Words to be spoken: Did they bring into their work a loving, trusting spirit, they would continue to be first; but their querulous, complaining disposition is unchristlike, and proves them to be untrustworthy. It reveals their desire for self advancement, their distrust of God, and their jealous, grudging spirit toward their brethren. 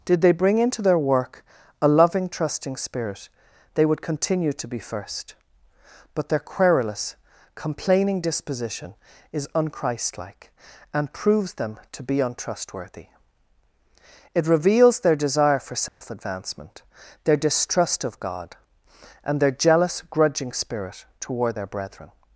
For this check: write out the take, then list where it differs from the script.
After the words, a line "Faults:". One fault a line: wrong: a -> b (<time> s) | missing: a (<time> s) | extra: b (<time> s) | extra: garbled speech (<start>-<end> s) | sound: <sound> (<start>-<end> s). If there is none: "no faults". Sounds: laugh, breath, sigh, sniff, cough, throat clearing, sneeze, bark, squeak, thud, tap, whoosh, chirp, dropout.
Did they bring into their work a loving, trusting spirit, they would continue to be first; but their querulous, complaining disposition is unchristlike, and proves them to be untrustworthy. It reveals their desire for self advancement, their distrust of God, and their jealous, grudging spirit toward their brethren.
Faults:
sound: dropout (15.9-16.0 s)